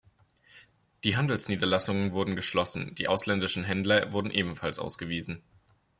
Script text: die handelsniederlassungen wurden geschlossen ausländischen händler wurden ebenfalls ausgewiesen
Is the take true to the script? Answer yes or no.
no